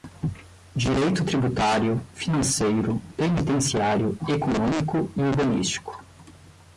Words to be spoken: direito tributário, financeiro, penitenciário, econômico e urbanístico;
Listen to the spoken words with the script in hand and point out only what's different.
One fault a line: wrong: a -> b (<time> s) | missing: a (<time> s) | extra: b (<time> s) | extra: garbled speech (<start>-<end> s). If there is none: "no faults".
no faults